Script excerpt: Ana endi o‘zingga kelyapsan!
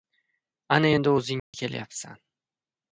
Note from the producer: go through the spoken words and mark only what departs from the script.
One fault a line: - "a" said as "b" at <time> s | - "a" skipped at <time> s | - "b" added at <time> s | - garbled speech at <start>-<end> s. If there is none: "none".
none